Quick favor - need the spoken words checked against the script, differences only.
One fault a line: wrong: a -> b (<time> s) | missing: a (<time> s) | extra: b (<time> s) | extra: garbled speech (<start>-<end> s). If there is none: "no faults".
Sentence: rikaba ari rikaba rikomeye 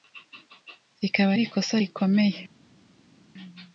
wrong: rikaba -> ikosa (1.5 s)